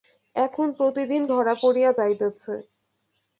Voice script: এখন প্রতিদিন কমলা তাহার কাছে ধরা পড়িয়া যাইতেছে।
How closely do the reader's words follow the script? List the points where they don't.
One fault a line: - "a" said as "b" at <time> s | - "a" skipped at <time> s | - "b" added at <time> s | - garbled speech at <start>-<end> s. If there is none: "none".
- "কমলা তাহার কাছে" skipped at 1.2 s